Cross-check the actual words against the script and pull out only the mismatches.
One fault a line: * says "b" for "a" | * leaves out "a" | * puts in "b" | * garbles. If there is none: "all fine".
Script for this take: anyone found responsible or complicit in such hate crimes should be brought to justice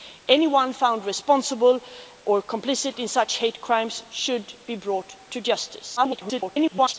* garbles